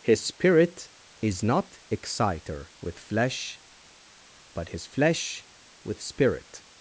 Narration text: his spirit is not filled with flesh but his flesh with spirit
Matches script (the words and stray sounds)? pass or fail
fail